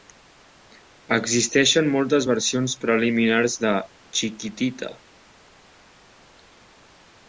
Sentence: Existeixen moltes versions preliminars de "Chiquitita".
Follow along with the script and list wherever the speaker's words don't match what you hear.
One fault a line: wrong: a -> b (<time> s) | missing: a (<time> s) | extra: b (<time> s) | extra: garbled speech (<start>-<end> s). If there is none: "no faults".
no faults